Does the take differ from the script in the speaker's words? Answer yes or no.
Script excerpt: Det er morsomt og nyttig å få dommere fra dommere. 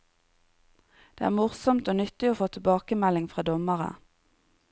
yes